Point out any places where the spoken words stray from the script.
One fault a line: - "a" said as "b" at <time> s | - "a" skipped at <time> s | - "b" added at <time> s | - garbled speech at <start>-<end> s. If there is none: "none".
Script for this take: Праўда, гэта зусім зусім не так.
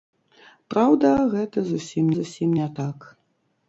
none